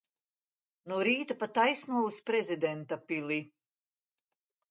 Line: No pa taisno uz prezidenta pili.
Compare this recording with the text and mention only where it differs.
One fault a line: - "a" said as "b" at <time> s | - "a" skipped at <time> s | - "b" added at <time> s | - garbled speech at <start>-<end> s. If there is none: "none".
- "rīta" added at 1.1 s